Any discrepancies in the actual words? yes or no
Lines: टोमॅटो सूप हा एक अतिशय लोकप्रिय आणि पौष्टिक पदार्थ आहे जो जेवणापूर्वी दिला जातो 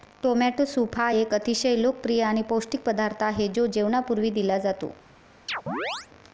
no